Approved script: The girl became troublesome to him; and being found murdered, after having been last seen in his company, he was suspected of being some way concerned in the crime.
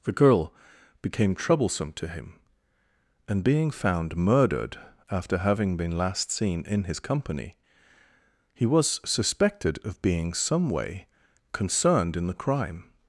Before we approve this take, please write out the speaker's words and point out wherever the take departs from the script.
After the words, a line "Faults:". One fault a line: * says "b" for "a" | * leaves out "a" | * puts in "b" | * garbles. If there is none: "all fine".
The girl became troublesome to him; and being found murdered, after having been last seen in his company, he was suspected of being some way concerned in the crime.
Faults:
all fine